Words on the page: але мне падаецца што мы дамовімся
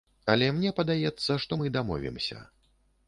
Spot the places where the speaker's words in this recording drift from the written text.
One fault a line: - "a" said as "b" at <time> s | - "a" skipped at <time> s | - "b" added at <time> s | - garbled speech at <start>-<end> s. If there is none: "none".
none